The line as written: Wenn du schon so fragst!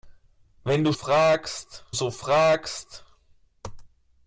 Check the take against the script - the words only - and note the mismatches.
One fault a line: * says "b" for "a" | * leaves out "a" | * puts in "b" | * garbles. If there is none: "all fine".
* says "fragst" for "schon"